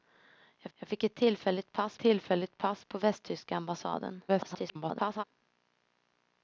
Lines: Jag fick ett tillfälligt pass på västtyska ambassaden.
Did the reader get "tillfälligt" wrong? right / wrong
right